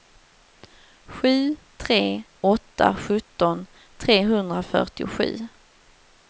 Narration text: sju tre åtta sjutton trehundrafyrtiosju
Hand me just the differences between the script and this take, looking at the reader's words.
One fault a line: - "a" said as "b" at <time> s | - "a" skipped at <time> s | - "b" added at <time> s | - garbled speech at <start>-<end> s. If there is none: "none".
none